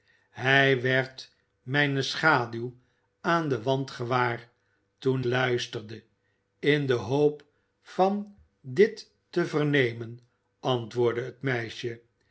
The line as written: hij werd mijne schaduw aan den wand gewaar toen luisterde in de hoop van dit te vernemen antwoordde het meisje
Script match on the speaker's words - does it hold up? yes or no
yes